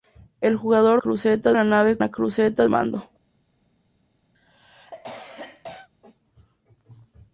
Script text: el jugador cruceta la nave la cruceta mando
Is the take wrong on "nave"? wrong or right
right